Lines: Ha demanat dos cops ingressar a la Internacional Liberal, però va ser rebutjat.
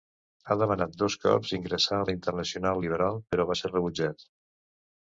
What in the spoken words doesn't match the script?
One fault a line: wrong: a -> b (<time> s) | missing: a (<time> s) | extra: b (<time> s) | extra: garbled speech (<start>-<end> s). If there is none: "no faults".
no faults